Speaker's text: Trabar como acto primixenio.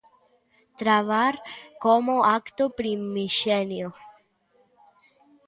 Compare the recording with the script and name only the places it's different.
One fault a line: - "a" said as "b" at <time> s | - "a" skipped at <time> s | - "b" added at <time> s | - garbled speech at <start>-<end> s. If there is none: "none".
none